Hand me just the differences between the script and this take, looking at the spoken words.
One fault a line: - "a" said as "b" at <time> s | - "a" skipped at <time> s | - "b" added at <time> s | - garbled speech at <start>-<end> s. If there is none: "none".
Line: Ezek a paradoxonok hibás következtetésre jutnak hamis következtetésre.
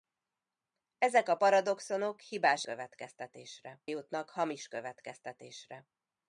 none